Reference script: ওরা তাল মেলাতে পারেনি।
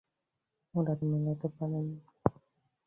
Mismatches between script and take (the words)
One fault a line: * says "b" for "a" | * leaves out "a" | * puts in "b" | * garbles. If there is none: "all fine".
* leaves out "তাল"